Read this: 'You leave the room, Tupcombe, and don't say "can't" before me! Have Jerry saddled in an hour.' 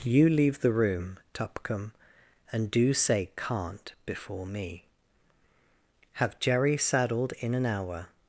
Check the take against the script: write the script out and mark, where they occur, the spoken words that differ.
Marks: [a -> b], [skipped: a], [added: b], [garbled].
'You leave the room, Tupcombe, and [don't -> do] say "can't" before me! Have Jerry saddled in an hour.'